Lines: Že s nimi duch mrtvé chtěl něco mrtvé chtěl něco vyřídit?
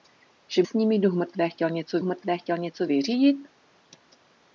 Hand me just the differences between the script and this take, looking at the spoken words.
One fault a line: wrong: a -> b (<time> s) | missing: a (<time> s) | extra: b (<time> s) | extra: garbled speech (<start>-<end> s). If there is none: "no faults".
no faults